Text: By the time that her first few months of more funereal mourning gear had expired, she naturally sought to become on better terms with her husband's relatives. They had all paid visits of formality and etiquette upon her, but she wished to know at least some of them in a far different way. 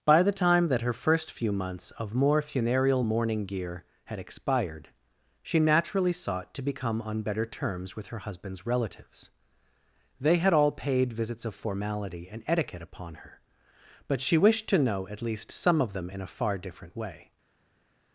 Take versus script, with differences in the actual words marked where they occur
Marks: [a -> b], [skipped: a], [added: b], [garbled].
By the time that her first few months of more funereal mourning gear had expired, she naturally sought to become on better terms with her husband's relatives. They had all paid visits of formality and etiquette upon her, but she wished to know at least some of them in a far different way.